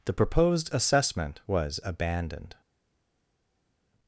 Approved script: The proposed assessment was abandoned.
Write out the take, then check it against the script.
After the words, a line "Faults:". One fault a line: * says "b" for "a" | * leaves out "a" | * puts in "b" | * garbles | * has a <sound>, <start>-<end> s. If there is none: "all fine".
The proposed assessment was abandoned.
Faults:
all fine